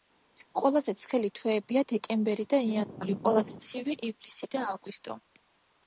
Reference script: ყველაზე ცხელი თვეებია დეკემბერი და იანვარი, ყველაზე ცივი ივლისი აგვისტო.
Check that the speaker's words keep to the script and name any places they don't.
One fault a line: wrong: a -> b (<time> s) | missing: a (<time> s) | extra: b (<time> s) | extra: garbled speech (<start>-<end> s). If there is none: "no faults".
extra: და (4.6 s)